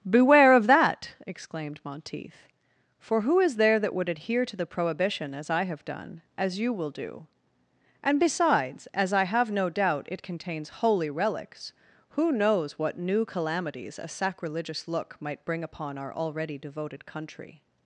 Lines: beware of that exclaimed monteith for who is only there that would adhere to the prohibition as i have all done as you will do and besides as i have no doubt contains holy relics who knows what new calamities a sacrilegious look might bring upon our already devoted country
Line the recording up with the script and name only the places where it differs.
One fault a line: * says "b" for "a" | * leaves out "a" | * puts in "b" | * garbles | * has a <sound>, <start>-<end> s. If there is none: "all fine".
* leaves out "only"
* leaves out "all"
* puts in "it"